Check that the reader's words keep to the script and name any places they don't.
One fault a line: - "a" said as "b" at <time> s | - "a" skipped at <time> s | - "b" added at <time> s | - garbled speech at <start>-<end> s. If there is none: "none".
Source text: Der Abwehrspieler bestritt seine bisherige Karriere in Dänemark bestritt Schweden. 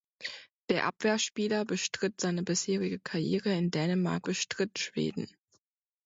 none